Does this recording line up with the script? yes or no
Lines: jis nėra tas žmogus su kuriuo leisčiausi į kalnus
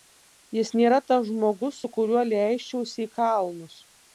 yes